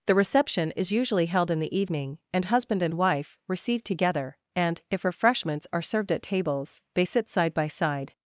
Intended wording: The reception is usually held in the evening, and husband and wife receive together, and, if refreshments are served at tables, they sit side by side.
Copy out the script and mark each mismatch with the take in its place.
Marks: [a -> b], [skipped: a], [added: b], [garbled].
The reception is usually held in the evening, and husband and wife receive together, and, if refreshments are served at tables, they sit side by side.